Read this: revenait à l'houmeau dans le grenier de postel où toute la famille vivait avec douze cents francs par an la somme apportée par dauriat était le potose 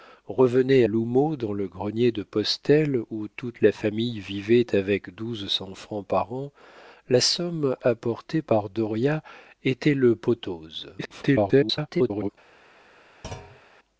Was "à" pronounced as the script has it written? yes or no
no